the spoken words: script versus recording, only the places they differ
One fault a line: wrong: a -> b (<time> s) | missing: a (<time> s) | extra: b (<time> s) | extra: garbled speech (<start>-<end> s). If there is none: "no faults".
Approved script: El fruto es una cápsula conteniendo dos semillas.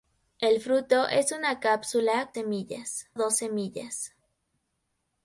wrong: conteniendo -> semillas (2.3 s)